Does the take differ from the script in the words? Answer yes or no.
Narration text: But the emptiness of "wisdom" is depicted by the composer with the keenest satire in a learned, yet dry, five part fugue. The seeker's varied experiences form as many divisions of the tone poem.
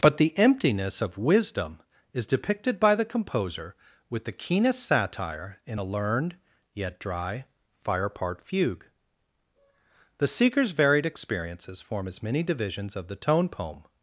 yes